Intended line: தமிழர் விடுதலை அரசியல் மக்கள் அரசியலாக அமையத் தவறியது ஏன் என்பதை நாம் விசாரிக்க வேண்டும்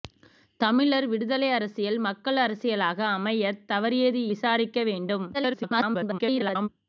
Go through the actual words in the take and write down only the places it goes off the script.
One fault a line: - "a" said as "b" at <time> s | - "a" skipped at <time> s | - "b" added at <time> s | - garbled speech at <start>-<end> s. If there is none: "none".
- "ஏன் என்பதை நாம்" skipped at 4.2 s
- garbled speech at 5.3-6.7 s